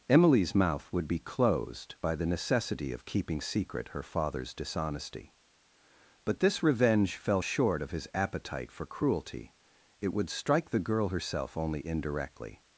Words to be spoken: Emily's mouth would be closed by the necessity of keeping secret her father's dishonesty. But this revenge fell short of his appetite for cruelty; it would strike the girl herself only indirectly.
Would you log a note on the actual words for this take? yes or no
no